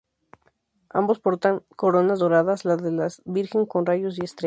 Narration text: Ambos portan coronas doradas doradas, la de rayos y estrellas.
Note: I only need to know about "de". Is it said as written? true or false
false